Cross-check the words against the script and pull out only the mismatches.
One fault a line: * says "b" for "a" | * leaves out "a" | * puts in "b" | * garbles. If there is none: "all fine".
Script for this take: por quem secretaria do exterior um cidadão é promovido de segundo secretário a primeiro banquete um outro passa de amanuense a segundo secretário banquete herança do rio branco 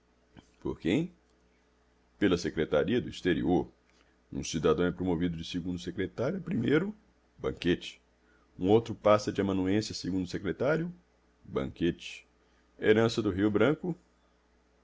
* puts in "pela"